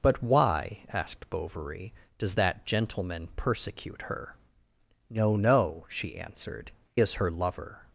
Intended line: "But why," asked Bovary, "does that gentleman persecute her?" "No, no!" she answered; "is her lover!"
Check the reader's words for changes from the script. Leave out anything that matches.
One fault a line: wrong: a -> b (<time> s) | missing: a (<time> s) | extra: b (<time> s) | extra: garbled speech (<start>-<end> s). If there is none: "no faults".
no faults